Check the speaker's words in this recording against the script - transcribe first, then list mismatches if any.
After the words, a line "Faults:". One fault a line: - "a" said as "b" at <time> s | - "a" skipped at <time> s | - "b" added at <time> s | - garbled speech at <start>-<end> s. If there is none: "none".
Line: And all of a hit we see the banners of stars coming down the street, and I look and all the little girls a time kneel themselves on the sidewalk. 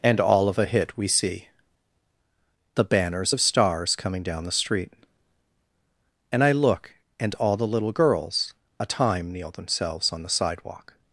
And all of a hit we see the banners of stars coming down the street, and I look and all the little girls a time kneel themselves on the sidewalk.
Faults:
none